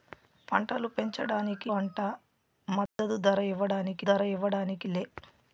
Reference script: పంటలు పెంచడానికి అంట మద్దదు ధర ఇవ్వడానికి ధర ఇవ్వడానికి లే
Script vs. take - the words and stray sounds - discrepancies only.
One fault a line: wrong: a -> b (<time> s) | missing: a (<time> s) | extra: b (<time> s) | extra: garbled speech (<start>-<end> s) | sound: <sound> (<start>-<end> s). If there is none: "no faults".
sound: dropout (2.9-3.0 s)